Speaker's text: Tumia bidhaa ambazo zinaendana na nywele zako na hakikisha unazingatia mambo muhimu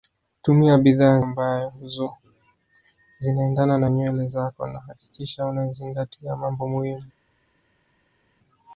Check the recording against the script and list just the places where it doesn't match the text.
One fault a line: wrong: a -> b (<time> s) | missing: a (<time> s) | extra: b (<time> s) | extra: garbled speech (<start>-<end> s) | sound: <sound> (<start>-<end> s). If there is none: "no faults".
no faults